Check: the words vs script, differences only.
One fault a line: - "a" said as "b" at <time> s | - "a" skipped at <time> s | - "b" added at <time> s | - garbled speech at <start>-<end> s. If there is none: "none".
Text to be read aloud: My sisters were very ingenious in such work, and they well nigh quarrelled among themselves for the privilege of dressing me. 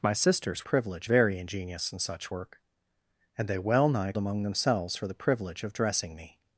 - "were" said as "privilege" at 0.6 s
- "quarrelled" skipped at 4.1 s